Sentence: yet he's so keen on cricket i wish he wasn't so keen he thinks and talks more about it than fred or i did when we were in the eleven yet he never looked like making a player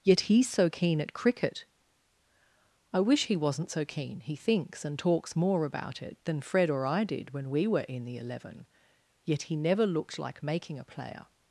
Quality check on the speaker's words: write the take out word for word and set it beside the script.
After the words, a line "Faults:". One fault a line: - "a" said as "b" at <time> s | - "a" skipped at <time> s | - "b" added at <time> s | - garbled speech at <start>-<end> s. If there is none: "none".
yet he's so keen at cricket i wish he wasn't so keen he thinks and talks more about it than fred or i did when we were in the eleven yet he never looked like making a player
Faults:
- "on" said as "at" at 1.0 s